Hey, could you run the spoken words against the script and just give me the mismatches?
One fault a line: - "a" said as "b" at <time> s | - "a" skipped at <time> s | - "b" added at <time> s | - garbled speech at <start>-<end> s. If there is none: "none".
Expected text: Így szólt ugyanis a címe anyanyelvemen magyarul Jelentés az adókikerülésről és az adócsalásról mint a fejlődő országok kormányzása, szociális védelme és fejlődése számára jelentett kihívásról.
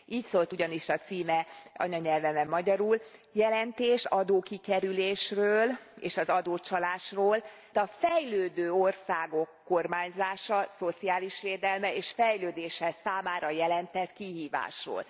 - "az" skipped at 4.0 s
- "mint" skipped at 7.4 s